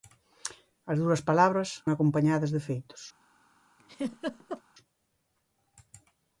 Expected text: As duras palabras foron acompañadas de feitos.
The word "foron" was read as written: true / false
false